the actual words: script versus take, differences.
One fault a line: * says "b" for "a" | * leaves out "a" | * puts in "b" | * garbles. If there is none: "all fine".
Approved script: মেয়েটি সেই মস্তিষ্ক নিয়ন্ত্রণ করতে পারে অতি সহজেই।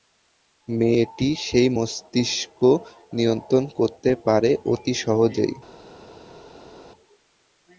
all fine